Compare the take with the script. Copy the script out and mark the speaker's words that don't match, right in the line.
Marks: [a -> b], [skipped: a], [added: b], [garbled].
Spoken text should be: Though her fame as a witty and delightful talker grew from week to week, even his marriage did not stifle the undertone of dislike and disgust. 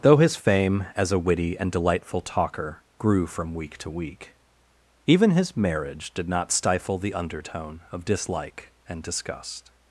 Though [her -> his] fame as a witty and delightful talker grew from week to week, even his marriage did not stifle the undertone of dislike and disgust.